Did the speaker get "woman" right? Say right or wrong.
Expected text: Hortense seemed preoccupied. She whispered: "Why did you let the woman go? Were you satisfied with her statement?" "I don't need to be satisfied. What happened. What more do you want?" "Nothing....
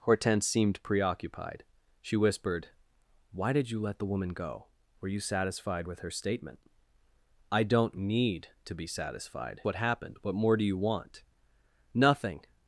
right